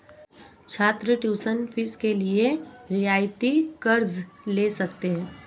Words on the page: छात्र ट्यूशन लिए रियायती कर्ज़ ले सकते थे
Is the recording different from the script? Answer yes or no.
yes